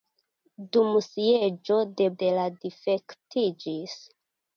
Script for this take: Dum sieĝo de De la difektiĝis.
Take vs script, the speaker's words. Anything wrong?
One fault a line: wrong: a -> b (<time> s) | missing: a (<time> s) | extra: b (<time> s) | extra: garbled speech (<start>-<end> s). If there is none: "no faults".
no faults